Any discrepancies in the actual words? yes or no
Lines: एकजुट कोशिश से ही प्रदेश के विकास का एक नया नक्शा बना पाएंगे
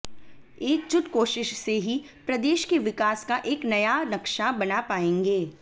no